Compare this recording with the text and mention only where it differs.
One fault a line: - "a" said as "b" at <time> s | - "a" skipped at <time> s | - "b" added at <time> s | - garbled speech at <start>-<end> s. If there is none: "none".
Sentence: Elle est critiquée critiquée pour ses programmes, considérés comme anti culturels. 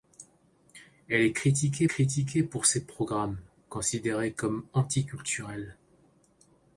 none